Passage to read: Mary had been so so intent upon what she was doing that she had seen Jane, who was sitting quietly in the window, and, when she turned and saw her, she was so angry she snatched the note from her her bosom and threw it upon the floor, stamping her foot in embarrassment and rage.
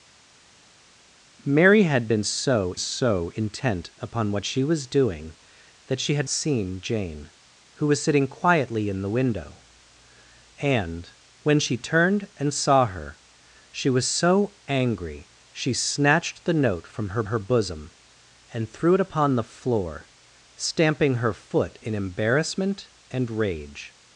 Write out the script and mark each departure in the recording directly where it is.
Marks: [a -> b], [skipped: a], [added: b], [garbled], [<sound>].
Mary had been so so intent upon what she was doing that she had seen Jane, who was sitting quietly in the window, and, when she turned and saw her, she was so angry she snatched the note from her her bosom and threw it upon the floor, stamping her foot in embarrassment and rage.